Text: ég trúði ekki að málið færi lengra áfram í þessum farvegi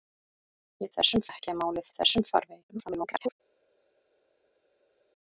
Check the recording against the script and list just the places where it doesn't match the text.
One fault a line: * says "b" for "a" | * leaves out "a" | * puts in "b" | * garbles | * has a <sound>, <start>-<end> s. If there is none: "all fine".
* says "þessum" for "trúði"
* leaves out "færi lengra áfram"
* garbles